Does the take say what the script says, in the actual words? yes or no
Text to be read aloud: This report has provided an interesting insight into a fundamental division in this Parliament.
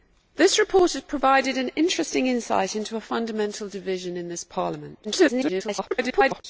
no